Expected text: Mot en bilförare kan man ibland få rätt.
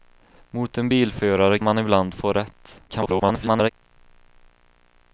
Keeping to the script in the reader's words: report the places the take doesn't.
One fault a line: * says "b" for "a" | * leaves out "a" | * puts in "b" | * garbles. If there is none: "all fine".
* leaves out "kan"
* garbles